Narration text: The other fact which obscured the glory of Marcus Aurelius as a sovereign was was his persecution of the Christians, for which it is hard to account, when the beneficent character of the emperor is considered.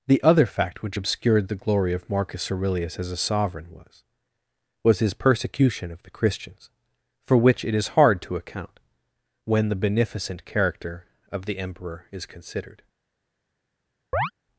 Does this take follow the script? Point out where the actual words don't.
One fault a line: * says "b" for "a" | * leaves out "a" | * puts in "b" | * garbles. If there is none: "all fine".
all fine